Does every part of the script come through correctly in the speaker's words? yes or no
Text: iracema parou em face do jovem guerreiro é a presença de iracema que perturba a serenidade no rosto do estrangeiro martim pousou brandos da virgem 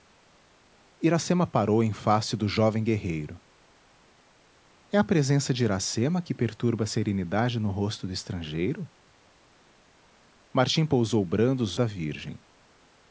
yes